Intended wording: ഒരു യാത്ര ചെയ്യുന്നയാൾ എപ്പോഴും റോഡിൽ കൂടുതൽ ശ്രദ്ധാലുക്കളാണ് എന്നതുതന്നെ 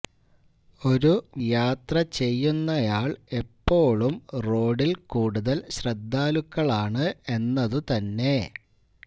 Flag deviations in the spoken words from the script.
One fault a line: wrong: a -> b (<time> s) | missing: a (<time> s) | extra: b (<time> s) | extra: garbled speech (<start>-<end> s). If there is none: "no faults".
no faults